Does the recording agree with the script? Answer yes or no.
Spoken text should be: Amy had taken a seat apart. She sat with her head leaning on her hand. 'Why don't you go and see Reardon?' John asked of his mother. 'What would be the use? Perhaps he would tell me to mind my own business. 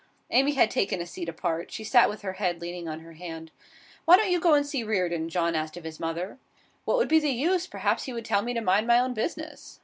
yes